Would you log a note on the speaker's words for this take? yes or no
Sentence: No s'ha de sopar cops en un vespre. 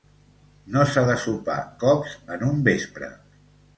no